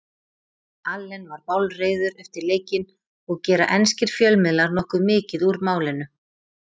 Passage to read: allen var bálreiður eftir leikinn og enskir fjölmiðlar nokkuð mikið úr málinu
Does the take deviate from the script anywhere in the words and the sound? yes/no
yes